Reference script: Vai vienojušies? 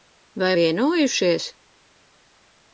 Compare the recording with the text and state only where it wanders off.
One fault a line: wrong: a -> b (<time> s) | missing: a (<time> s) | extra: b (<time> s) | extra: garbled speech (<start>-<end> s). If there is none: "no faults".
no faults